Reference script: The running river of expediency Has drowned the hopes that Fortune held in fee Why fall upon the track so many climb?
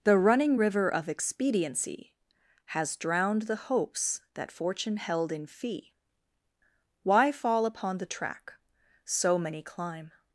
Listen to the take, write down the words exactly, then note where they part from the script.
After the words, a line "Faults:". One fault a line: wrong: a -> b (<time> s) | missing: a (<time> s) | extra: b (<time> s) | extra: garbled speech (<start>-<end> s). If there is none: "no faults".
The running river of expediency Has drowned the hopes that Fortune held in fee Why fall upon the track so many climb?
Faults:
no faults